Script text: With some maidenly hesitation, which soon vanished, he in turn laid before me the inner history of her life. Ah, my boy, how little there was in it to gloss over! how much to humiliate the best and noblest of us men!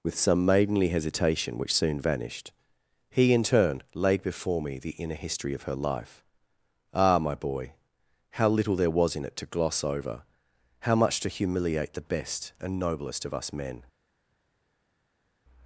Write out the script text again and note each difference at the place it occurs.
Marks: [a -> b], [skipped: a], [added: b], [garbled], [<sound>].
With some maidenly hesitation, which soon vanished, he in turn laid before me the inner history of her life. Ah, my boy, how little there was in it to gloss over! how much to humiliate the best and noblest of us men!